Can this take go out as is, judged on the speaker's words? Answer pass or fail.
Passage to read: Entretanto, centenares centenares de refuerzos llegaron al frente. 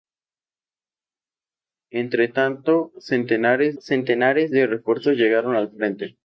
pass